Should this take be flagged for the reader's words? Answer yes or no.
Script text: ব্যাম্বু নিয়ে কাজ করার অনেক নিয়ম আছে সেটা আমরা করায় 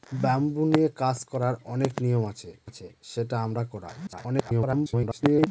yes